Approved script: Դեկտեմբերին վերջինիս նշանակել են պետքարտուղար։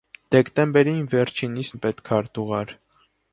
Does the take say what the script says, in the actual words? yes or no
no